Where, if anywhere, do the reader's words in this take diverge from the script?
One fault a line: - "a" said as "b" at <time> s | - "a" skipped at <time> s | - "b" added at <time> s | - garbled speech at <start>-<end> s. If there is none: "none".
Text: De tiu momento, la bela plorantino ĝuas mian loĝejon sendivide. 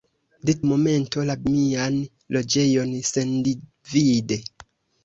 - "tiu" skipped at 0.5 s
- "bela plorantino ĝuas" skipped at 1.3 s